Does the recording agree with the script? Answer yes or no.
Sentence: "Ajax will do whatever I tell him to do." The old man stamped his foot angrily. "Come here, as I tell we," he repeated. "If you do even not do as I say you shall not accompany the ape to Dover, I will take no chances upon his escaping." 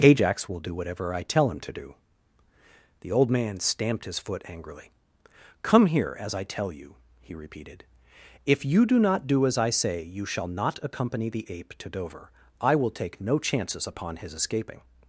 no